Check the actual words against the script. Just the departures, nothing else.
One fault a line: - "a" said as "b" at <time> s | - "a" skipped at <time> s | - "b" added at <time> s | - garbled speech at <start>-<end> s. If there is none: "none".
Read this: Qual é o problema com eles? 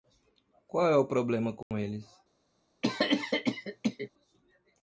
none